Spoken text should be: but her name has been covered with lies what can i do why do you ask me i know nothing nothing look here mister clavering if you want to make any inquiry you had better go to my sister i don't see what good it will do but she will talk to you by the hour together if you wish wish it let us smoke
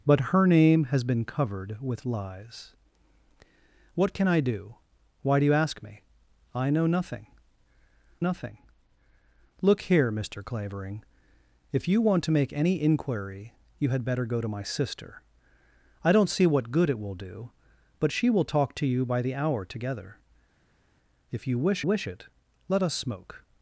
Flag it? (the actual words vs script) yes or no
no